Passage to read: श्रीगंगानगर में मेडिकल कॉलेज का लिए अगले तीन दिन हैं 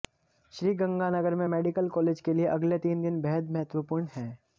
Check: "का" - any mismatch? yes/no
yes